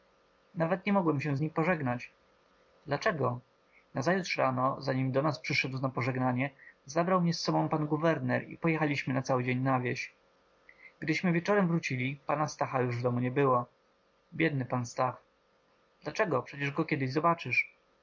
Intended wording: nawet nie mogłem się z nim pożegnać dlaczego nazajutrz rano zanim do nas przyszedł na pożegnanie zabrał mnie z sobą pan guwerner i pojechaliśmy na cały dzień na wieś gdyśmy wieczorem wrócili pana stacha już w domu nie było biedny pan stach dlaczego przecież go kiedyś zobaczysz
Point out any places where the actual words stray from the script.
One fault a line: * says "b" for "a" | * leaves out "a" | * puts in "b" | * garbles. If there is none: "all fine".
all fine